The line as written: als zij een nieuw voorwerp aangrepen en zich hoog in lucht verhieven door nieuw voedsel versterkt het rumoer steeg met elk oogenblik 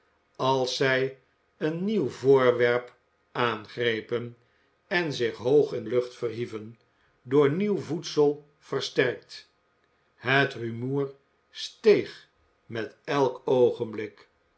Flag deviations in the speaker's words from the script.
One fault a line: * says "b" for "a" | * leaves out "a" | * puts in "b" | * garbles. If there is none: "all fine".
all fine